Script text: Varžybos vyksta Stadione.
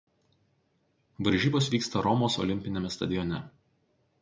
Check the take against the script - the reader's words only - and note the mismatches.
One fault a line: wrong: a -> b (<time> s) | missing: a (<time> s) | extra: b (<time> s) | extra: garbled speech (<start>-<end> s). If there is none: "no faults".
extra: Romos olimpiniame (2.0 s)